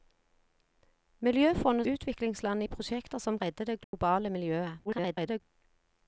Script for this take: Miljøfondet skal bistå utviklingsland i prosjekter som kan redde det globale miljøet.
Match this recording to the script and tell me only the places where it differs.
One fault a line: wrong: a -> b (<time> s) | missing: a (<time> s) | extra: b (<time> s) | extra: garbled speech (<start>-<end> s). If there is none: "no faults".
missing: skal bistå (1.9 s)
missing: kan (3.4 s)
extra: garbled speech (4.8-5.4 s)